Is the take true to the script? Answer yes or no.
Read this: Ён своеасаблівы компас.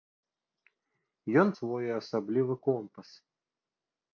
yes